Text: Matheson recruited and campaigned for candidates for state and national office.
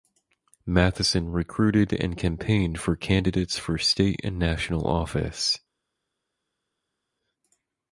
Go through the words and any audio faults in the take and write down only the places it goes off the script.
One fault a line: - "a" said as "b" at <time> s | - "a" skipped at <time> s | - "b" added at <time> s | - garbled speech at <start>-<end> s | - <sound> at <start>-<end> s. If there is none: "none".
none